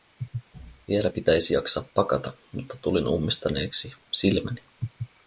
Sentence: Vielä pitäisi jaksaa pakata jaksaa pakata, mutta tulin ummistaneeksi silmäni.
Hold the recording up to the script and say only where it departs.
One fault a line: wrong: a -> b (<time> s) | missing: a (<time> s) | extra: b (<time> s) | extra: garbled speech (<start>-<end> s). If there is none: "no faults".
missing: jaksaa pakata (2.3 s)